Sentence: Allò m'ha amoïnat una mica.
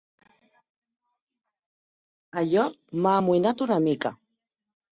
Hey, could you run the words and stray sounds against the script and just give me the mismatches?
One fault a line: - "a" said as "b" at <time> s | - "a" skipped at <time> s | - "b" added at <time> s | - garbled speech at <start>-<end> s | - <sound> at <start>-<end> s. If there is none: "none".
none